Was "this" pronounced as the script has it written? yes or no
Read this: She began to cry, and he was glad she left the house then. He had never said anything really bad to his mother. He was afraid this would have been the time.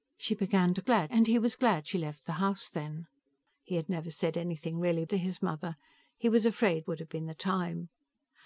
no